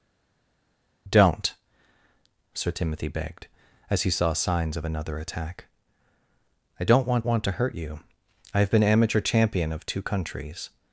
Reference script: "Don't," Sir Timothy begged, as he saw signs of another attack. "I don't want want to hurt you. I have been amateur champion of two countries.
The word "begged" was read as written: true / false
true